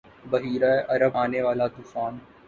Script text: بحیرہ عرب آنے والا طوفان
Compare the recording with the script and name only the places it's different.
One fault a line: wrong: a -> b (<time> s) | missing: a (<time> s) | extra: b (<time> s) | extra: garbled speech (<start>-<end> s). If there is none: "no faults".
no faults